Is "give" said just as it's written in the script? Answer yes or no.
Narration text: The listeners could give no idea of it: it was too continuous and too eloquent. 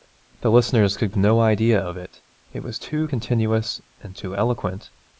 no